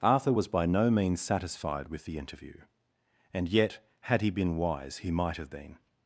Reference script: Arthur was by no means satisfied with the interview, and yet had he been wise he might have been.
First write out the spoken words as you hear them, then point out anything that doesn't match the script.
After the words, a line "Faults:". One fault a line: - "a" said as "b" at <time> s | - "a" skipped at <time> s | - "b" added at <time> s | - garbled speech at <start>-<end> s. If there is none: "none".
Arthur was by no means satisfied with the interview, and yet had he been wise he might have been.
Faults:
none